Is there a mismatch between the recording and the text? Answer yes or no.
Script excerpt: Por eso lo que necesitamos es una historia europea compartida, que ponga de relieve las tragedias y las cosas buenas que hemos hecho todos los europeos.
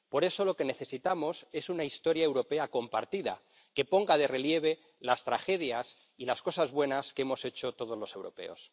no